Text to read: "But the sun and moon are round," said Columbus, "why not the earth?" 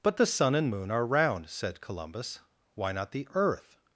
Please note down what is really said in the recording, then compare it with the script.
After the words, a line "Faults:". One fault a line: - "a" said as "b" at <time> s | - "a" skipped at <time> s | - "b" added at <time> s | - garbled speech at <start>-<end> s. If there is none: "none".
"But the sun and moon are round," said Columbus, "why not the earth?"
Faults:
none